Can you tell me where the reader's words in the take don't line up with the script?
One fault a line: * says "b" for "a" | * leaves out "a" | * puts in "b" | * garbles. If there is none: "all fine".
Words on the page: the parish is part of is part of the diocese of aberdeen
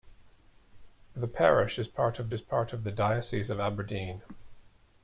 all fine